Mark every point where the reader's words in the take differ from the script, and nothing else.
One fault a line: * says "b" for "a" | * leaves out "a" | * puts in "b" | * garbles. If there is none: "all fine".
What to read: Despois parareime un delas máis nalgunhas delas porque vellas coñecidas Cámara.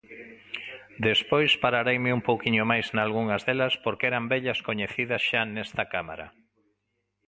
* says "pouquiño" for "delas"
* puts in "eran"
* puts in "xa nesta"